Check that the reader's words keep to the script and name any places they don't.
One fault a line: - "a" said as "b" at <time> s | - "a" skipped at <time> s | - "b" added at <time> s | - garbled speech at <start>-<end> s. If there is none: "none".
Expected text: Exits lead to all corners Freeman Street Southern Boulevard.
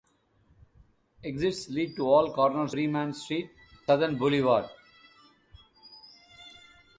none